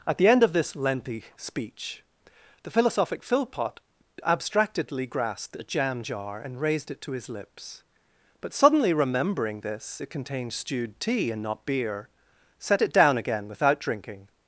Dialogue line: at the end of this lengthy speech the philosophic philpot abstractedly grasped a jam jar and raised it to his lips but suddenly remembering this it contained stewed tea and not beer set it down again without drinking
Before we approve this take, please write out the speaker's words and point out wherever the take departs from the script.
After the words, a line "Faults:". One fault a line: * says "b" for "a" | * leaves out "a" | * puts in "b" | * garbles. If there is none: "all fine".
at the end of this lengthy speech the philosophic philpot abstractedly grasped a jam jar and raised it to his lips but suddenly remembering this it contained stewed tea and not beer set it down again without drinking
Faults:
all fine